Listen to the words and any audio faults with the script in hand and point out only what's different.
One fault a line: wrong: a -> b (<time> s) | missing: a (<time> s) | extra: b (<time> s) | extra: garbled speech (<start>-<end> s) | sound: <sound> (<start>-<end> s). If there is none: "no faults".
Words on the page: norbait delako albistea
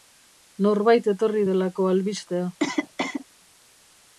extra: etorri (1.1 s)
sound: cough (2.6-3.3 s)